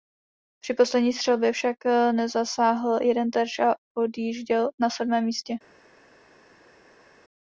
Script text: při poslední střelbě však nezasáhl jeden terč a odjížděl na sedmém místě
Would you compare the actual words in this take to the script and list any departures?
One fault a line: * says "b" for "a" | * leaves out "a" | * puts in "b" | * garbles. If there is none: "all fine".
all fine